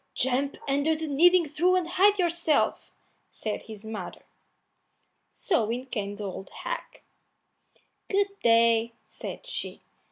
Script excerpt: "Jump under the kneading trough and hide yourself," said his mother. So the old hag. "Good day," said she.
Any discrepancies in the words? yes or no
yes